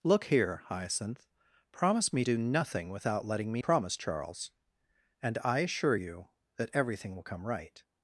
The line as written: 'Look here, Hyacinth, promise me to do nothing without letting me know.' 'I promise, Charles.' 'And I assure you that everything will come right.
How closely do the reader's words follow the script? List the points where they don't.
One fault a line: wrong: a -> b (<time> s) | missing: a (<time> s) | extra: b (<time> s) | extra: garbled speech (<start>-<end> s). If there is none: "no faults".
missing: to (2.2 s)
missing: know I (3.6 s)